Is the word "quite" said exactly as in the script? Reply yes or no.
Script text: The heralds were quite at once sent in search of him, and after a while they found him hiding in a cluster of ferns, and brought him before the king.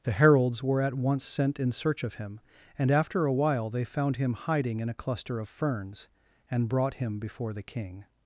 no